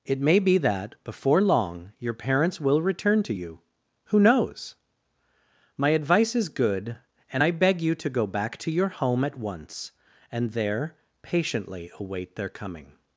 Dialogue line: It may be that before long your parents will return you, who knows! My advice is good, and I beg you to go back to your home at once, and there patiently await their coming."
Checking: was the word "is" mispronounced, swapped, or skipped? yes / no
no